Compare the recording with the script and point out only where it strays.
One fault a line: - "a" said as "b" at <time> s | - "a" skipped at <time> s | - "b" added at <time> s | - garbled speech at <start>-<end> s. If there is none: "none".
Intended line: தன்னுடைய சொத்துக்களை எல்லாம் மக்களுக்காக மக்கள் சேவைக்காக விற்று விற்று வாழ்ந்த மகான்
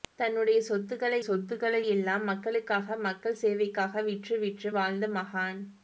- "சொத்துக்களை" added at 1.2 s